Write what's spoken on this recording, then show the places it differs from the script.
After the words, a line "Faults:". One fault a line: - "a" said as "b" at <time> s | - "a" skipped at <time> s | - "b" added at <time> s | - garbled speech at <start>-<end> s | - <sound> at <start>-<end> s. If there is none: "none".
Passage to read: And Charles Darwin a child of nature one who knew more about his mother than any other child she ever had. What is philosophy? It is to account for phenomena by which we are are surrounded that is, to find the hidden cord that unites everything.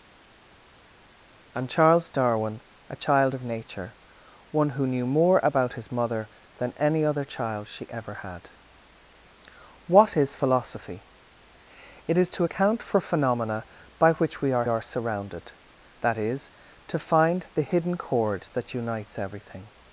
And Charles Darwin a child of nature one who knew more about his mother than any other child she ever had. What is philosophy? It is to account for phenomena by which we are are surrounded that is, to find the hidden cord that unites everything.
Faults:
none